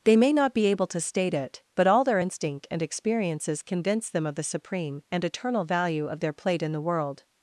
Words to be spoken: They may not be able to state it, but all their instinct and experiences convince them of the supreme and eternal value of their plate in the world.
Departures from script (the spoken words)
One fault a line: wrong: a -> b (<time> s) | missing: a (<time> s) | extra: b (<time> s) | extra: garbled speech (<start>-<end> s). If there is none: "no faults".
no faults